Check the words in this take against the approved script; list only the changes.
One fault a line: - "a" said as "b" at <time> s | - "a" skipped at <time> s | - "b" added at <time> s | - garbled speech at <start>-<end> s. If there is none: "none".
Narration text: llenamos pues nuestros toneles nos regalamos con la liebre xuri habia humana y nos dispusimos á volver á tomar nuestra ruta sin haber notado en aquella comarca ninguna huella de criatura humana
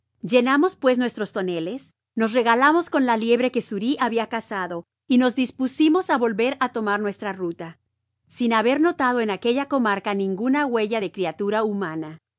- "que" added at 3.5 s
- "humana" said as "cazado" at 4.3 s